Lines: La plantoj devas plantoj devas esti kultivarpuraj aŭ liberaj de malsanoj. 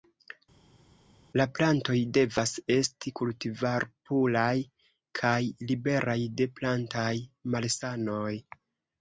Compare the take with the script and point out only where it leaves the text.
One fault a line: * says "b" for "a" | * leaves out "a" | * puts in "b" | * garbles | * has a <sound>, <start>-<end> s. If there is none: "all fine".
* leaves out "plantoj devas"
* says "kaj" for "aŭ"
* puts in "plantaj"